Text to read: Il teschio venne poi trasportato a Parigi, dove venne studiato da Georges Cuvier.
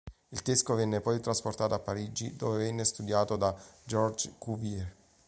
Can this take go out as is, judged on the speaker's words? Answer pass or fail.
pass